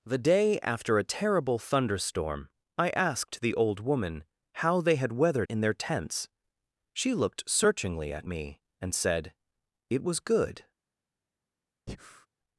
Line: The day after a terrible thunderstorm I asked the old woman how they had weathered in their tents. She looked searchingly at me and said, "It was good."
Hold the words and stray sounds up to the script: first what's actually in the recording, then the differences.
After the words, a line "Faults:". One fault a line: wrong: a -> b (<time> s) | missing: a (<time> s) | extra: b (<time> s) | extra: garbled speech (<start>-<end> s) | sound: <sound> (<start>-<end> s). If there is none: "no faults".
The day after a terrible thunderstorm I asked the old woman how they had weathered in their tents. She looked searchingly at me and said, "It was good."
Faults:
sound: breath (11.9-12.3 s)